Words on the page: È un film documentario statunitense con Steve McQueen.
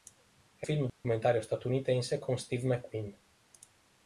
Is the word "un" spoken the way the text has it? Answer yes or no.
no